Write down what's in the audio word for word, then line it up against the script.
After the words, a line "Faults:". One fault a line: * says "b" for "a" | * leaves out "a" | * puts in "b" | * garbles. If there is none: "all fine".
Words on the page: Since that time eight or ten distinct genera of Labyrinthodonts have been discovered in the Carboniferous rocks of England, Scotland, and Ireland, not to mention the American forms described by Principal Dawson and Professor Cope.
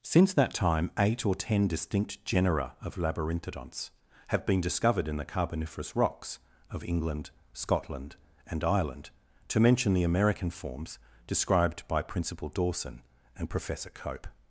Since that time eight or ten distinct genera of Labyrinthodonts have been discovered in the Carboniferous rocks of England, Scotland, and Ireland, to mention the American forms described by Principal Dawson and Professor Cope.
Faults:
* leaves out "not"